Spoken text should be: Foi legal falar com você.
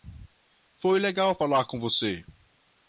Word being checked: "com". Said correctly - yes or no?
yes